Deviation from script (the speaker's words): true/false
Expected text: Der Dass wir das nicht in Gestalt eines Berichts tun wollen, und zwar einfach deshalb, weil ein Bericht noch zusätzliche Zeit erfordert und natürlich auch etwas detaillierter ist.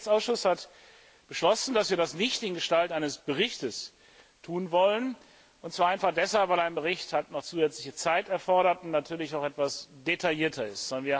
true